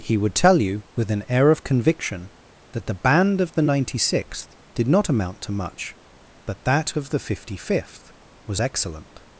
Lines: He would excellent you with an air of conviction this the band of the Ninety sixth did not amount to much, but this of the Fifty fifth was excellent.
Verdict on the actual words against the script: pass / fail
fail